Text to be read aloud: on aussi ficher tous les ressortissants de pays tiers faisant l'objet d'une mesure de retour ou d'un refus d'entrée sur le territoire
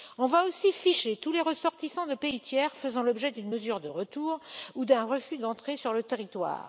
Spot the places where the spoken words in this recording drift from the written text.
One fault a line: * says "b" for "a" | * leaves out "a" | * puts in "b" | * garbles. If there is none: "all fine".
* puts in "va"